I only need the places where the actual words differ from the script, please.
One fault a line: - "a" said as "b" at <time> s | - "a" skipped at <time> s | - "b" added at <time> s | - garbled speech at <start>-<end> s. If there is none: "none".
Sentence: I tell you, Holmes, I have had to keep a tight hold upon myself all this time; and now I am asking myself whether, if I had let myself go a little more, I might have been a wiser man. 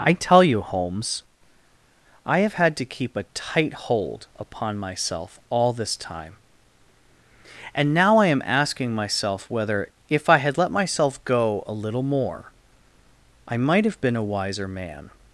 none